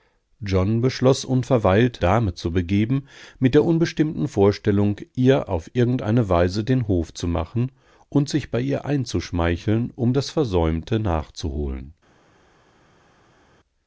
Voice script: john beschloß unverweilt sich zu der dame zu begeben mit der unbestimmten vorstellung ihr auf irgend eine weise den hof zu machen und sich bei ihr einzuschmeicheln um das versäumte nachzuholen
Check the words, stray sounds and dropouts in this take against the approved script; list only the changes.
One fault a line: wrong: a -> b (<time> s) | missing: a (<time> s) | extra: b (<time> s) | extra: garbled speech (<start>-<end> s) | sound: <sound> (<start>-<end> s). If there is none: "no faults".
missing: sich zu der (2.0 s)